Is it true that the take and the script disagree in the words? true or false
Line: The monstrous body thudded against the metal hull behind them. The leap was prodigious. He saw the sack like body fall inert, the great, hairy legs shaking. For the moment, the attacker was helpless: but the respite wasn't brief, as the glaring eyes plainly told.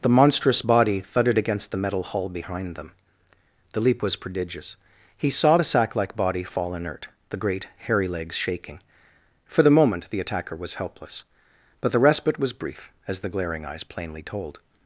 true